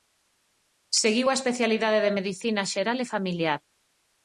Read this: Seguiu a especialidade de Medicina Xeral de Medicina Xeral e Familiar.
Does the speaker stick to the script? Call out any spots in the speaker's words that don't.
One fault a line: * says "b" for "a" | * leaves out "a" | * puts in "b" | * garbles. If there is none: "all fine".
* leaves out "de Medicina Xeral"